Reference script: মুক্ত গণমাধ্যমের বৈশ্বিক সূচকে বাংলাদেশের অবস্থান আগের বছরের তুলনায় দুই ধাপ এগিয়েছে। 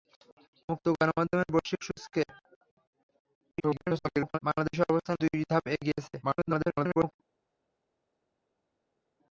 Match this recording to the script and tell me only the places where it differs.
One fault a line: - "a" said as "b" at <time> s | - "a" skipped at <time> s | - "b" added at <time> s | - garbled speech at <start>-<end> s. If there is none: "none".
- garbled speech at 3.5-4.4 s
- "আগের বছরের তুলনায়" skipped at 5.2 s
- garbled speech at 6.2-7.1 s